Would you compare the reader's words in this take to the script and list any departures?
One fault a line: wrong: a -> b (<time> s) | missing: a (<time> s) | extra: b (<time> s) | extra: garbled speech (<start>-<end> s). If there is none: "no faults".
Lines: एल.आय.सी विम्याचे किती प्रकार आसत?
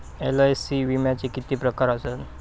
no faults